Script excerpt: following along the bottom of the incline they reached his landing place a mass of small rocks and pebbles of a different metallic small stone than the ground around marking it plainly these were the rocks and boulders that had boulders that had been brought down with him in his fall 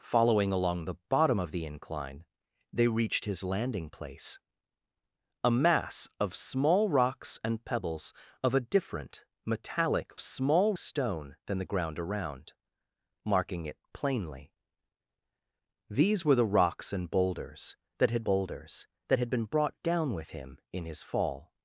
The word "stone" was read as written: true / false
true